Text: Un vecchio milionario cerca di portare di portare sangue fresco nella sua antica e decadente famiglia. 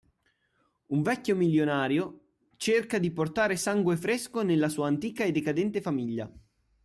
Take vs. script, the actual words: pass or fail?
fail